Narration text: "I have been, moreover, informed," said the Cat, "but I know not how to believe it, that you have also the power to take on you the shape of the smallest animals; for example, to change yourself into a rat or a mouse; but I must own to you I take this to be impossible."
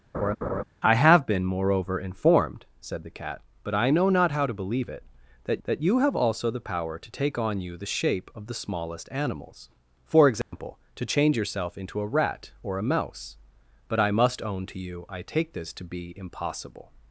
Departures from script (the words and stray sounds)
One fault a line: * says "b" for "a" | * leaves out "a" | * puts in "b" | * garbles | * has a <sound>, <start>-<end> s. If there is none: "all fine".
* has a laugh, 0.1-0.6 s
* puts in "that"
* has a dropout, 10.4-10.5 s